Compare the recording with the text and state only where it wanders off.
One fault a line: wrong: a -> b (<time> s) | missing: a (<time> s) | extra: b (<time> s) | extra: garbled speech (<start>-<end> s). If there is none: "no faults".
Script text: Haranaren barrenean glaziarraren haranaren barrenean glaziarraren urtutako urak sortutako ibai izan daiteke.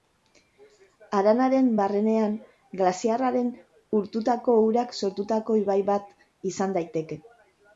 missing: haranaren barrenean glaziarraren (3.5 s)
extra: bat (5.9 s)